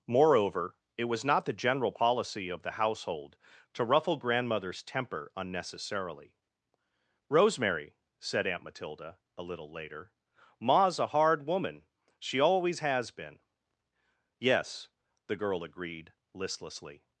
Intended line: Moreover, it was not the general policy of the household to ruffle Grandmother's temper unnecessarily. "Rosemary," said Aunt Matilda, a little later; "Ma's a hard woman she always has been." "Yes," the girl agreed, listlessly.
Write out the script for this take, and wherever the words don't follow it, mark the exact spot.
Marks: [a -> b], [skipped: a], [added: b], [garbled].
Moreover, it was not the general policy of the household to ruffle Grandmother's temper unnecessarily. "Rosemary," said Aunt Matilda, a little later; "Ma's a hard woman she always has been." "Yes," the girl agreed, listlessly.